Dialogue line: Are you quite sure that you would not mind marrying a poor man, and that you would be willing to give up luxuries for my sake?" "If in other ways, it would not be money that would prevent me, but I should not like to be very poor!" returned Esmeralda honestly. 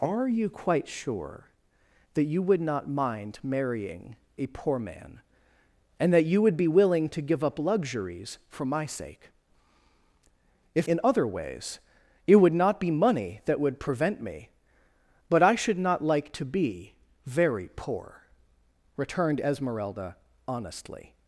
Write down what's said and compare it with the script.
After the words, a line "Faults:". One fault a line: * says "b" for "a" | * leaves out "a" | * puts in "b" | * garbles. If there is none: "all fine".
Are you quite sure that you would not mind marrying a poor man, and that you would be willing to give up luxuries for my sake?" "If in other ways, it would not be money that would prevent me, but I should not like to be very poor!" returned Esmeralda honestly.
Faults:
all fine